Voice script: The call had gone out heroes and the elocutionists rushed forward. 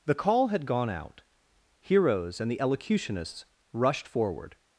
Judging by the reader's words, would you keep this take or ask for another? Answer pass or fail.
pass